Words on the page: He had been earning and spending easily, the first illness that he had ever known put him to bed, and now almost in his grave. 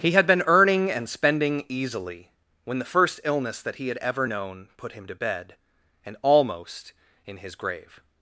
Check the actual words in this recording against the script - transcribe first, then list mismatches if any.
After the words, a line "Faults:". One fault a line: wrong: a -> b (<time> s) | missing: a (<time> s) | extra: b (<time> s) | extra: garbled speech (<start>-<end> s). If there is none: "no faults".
He had been earning and spending easily, when the first illness that he had ever known put him to bed, and almost in his grave.
Faults:
extra: when (2.6 s)
missing: now (6.2 s)